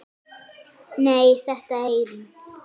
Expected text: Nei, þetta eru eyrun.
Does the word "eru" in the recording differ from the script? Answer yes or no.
yes